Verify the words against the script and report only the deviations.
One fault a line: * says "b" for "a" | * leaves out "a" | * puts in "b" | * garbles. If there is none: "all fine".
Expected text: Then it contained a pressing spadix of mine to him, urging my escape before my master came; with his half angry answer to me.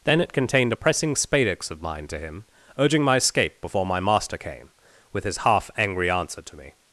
all fine